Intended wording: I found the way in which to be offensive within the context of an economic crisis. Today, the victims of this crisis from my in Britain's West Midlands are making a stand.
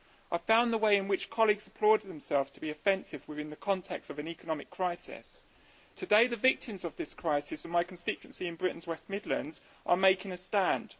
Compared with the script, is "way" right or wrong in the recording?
right